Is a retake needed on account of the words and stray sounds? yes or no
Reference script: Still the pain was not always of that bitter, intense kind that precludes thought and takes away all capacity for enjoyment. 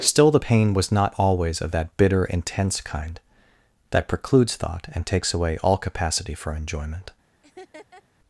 yes